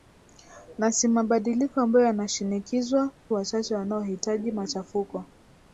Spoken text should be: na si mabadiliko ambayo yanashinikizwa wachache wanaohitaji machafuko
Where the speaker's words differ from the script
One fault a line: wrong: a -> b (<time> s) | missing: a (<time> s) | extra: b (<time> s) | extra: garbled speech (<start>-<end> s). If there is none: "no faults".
no faults